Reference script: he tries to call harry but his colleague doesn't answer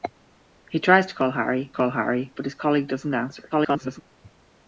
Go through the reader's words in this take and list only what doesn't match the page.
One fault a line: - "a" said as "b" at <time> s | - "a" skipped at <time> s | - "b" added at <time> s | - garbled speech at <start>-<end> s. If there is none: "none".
- "call harry" added at 1.7 s
- garbled speech at 3.5-4.0 s